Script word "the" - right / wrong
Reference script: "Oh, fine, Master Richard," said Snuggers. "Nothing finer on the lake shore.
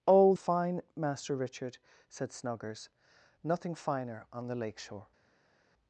right